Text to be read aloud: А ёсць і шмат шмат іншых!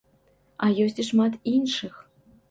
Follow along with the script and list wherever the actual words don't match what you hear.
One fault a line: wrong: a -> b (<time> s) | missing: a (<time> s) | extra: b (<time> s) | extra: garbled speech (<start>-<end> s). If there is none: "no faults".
missing: шмат (1.4 s)